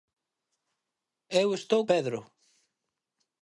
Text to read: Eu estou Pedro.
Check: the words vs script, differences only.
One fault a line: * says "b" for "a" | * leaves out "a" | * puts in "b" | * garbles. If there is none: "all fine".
all fine